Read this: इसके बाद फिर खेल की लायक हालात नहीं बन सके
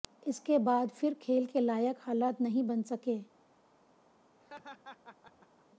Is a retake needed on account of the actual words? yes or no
yes